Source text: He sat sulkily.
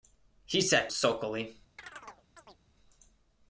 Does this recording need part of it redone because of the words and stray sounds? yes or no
yes